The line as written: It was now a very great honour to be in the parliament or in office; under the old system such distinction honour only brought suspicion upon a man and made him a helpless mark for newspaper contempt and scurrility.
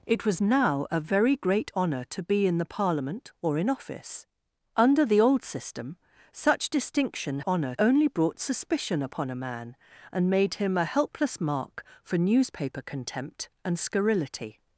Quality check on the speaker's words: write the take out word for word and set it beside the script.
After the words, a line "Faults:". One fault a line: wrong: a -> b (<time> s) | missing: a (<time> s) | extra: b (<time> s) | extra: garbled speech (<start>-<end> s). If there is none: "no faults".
It was now a very great honour to be in the parliament or in office; under the old system such distinction honour only brought suspicion upon a man and made him a helpless mark for newspaper contempt and scurrility.
Faults:
no faults